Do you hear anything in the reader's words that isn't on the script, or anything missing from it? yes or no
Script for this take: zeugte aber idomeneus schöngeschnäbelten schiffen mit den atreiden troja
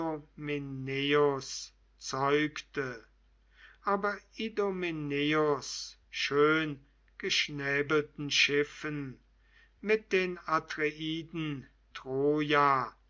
no